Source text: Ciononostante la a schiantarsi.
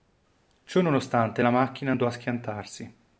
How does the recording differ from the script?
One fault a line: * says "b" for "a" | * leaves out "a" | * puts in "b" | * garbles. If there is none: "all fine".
* puts in "macchina andò"